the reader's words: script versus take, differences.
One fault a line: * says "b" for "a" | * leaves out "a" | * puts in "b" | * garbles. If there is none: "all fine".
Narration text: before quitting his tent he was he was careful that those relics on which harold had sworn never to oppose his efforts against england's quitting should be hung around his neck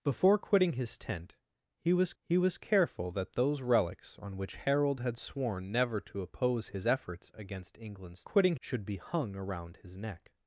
all fine